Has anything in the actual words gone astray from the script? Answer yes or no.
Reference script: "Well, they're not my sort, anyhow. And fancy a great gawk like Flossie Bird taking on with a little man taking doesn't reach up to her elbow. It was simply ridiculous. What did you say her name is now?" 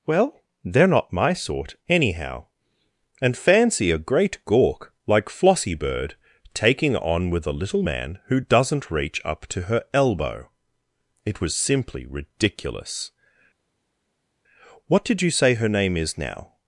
yes